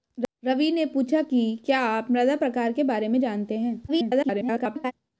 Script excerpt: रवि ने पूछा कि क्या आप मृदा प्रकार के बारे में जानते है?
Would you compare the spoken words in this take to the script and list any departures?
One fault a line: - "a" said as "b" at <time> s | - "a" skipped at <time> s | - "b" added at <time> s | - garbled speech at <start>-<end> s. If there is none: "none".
- garbled speech at 3.9-4.9 s